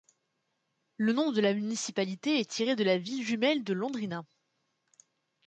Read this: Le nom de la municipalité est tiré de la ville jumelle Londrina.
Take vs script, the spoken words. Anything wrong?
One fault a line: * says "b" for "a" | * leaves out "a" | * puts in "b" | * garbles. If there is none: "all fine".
* puts in "de"